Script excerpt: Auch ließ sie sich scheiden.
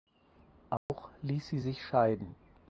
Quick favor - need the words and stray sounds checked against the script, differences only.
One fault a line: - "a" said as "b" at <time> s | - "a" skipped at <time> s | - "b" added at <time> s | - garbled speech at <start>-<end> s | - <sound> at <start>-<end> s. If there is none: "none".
- dropout at 0.8-0.9 s